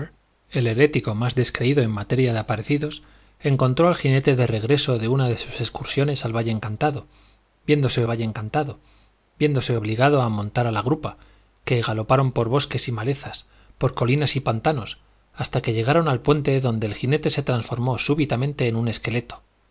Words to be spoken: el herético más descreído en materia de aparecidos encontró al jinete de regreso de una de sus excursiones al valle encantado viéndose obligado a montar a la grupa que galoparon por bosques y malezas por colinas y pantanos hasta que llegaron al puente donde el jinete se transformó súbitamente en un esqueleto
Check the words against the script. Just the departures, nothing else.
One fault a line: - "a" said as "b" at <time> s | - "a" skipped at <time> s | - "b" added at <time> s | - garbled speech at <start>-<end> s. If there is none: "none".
- "valle encantado viéndose" added at 8.1 s